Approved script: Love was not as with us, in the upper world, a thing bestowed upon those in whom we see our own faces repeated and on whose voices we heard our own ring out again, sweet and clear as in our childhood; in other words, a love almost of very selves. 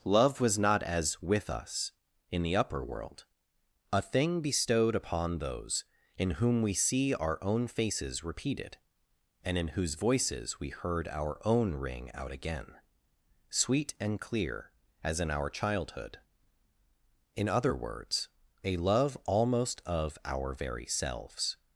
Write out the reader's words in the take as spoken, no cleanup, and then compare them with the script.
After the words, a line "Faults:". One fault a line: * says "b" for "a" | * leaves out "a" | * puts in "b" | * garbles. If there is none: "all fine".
Love was not as with us, in the upper world, a thing bestowed upon those in whom we see our own faces repeated and in whose voices we heard our own ring out again, sweet and clear as in our childhood; in other words, a love almost of our very selves.
Faults:
* says "in" for "on"
* puts in "our"